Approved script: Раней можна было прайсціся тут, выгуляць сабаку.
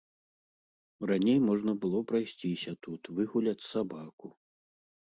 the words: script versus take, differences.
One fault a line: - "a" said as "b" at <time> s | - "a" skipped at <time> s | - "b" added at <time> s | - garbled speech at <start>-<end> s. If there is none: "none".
none